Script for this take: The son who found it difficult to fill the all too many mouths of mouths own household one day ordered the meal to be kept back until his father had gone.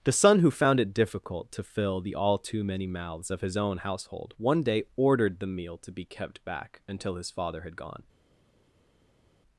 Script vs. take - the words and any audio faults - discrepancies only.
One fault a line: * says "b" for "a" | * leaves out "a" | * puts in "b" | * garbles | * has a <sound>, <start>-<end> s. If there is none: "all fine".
* says "his" for "mouths"